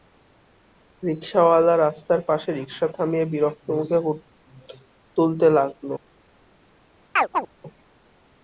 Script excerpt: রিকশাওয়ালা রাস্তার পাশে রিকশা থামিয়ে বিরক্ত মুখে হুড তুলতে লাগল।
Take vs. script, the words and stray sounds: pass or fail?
fail